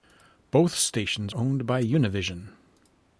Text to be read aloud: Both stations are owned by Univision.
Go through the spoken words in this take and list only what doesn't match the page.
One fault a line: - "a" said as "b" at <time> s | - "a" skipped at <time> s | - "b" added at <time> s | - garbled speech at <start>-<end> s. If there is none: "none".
- "are" skipped at 1.4 s